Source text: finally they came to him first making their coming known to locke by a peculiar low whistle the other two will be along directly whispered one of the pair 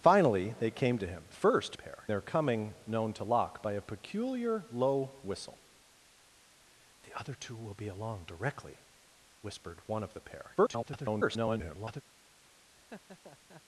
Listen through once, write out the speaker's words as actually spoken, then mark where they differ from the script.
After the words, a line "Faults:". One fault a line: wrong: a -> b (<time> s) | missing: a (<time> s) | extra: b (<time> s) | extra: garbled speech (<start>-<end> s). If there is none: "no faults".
finally they came to him first pair their coming known to locke by a peculiar low whistle the other two will be along directly whispered one of the pair [garbled]
Faults:
wrong: making -> pair (1.7 s)
extra: garbled speech (10.6-12.0 s)